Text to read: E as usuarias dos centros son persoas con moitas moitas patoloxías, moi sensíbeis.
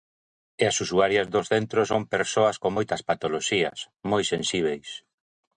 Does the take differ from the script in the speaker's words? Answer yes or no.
yes